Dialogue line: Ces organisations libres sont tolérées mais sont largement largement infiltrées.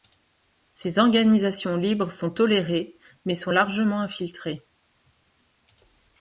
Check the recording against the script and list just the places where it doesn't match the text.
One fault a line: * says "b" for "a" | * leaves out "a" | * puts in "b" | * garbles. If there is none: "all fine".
* leaves out "largement"